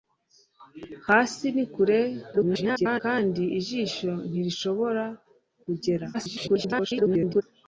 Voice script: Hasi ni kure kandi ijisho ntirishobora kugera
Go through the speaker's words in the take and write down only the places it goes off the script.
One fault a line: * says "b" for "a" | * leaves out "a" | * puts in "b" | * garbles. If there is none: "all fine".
* garbles
* garbles